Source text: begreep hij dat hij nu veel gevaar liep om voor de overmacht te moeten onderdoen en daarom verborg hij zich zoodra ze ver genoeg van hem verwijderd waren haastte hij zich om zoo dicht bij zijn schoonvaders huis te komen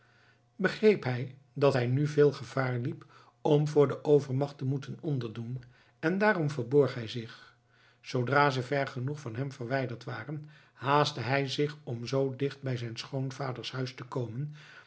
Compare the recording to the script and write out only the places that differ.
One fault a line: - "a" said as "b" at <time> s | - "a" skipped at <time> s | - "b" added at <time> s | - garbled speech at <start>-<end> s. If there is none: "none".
none